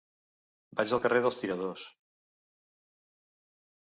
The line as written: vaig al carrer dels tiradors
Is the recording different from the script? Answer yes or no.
no